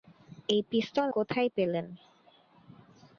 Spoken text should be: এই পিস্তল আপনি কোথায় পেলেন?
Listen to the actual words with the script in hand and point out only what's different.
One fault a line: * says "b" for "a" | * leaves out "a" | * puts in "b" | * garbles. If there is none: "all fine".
* leaves out "আপনি"